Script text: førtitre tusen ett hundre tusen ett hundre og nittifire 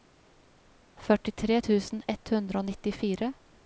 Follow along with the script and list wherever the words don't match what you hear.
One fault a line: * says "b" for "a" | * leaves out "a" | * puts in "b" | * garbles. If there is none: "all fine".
* leaves out "tusen ett hundre"